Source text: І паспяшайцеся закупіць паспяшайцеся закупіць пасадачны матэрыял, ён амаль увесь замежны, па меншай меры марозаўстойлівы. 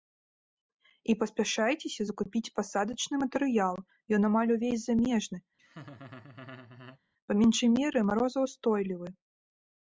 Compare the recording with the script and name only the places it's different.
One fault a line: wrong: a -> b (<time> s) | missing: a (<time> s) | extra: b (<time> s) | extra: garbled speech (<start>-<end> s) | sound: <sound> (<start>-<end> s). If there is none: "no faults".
missing: паспяшайцеся закупіць (2.5 s)
sound: laugh (5.6-7.0 s)